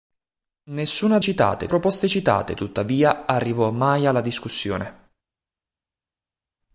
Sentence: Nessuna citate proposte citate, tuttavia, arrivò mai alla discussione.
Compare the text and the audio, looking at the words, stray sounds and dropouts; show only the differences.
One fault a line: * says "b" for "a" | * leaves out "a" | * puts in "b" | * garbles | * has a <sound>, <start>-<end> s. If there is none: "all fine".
all fine